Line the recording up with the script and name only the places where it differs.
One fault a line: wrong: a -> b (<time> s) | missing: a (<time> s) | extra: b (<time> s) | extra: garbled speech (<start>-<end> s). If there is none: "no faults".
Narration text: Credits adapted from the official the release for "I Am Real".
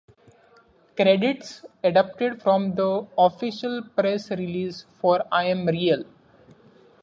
wrong: the -> press (3.8 s)